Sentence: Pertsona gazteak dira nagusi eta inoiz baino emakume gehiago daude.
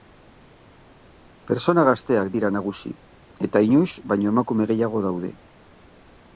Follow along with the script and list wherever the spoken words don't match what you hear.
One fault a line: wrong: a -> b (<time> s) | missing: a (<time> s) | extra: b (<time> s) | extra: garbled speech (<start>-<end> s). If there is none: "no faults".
no faults